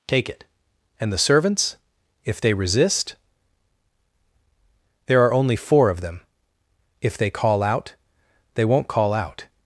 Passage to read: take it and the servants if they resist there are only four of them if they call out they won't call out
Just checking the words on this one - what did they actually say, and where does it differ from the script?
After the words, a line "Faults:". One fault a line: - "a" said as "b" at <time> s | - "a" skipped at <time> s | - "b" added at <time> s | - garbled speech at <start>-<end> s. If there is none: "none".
take it and the servants if they resist there are only four of them if they call out they won't call out
Faults:
none